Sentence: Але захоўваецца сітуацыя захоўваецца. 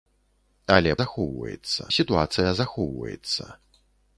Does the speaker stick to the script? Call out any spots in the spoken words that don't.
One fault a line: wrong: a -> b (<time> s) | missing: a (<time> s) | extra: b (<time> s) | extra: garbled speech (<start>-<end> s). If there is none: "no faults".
no faults